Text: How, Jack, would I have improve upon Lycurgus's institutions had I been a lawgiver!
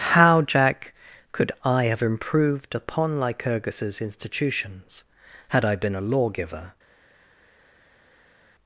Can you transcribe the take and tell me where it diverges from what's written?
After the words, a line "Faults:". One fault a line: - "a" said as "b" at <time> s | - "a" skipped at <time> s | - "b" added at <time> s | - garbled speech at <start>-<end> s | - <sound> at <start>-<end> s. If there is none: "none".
How, Jack, could I have improved upon Lycurgus's institutions had I been a lawgiver!
Faults:
- "would" said as "could" at 1.3 s
- "improve" said as "improved" at 2.0 s